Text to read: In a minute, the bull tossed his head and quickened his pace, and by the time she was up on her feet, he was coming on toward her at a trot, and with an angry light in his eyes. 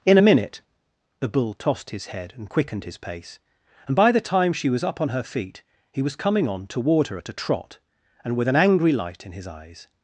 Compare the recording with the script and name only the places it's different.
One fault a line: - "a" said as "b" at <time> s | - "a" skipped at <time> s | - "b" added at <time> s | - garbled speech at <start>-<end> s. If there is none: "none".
none